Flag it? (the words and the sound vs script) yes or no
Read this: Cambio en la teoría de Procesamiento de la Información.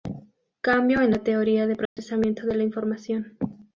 yes